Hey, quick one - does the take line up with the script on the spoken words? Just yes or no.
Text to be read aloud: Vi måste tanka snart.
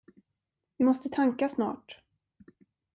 yes